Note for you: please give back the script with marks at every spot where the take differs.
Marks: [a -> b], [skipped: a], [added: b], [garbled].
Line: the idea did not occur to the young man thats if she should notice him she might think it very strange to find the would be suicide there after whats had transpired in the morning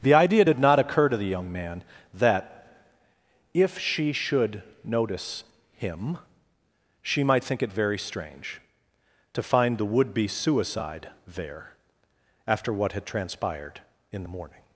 the idea did not occur to the young man [thats -> that] if she should notice him she might think it very strange to find the would be suicide there after [whats -> what] had transpired in the morning